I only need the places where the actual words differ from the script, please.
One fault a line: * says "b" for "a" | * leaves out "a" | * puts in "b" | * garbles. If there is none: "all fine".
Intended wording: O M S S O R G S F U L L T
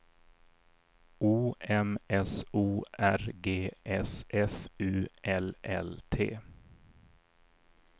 * leaves out "S"